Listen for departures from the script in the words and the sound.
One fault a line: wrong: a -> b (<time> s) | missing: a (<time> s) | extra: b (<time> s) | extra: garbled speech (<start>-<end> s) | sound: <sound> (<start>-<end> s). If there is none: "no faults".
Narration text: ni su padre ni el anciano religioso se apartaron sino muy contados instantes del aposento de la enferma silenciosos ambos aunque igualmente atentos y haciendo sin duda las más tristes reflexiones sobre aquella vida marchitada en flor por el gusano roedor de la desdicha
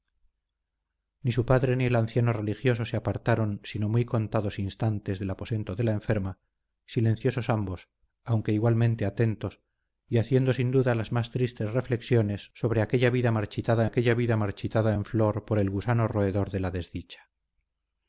extra: aquella vida marchitada (13.8 s)